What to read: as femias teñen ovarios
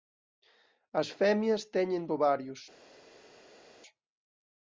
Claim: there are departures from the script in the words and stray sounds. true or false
false